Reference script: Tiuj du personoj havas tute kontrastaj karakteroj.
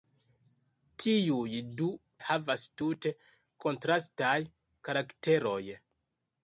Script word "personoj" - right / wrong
wrong